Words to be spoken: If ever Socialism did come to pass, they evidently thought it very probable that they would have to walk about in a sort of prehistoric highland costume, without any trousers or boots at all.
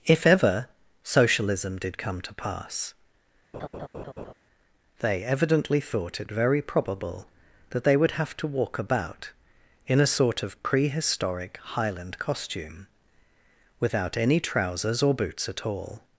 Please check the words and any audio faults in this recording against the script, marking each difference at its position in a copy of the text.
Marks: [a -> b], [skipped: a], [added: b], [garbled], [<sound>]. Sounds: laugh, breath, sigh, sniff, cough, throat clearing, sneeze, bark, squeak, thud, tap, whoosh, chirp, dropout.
If ever Socialism did come to pass, [laugh] they evidently thought it very probable that they would have to walk about in a sort of prehistoric highland costume, without any trousers or boots at all.